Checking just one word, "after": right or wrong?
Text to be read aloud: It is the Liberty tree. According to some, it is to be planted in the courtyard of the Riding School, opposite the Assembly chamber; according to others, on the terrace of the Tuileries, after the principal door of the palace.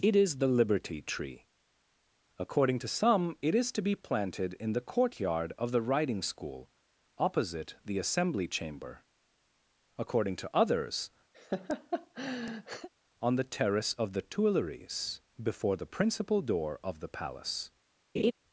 wrong